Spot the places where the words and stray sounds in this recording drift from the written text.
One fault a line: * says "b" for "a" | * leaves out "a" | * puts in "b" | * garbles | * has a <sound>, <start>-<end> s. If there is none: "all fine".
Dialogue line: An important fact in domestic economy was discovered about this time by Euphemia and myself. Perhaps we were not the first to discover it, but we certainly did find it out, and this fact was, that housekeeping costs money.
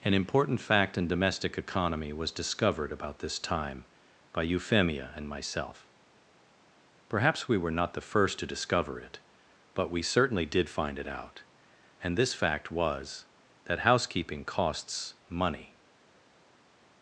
all fine